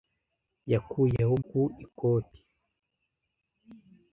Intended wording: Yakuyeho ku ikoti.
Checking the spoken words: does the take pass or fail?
pass